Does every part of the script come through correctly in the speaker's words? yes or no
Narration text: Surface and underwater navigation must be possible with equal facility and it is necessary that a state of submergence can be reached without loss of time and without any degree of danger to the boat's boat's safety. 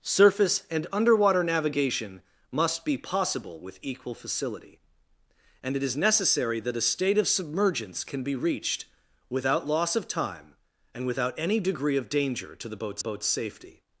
yes